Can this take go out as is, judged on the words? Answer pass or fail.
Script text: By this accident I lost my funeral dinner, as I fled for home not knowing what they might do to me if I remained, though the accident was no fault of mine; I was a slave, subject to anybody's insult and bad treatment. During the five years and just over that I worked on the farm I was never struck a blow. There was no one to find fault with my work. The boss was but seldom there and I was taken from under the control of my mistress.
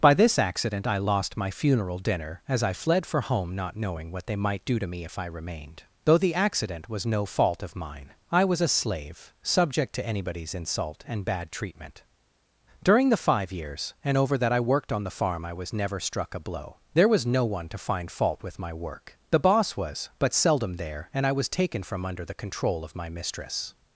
fail